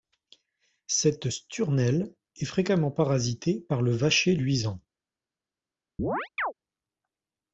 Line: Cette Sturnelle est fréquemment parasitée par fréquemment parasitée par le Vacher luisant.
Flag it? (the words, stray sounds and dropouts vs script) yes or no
yes